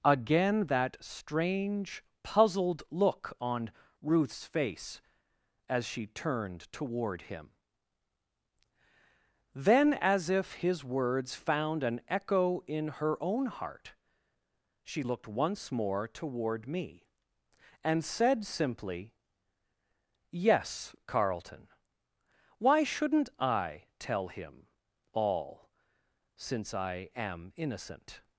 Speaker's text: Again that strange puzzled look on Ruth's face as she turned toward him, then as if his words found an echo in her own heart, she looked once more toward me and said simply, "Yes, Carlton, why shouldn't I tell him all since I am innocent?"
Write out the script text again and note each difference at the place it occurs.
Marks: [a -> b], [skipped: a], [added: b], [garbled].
Again that strange puzzled look on Ruth's face as she turned toward him, then as if his words found an echo in her own heart, she looked once more toward me and said simply, "Yes, Carlton, why shouldn't I tell him all since I am innocent?"